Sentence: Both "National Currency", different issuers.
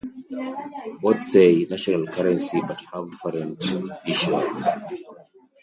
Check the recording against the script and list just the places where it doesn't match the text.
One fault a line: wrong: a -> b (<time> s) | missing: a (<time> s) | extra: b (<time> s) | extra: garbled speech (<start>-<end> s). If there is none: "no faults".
extra: say (1.2 s)
extra: but have (2.7 s)